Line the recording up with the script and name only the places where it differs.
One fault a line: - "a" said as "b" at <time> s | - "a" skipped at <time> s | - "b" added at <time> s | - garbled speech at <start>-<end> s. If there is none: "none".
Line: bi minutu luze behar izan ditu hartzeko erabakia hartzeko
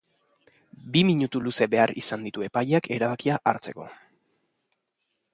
- "hartzeko" said as "epaileak" at 2.5 s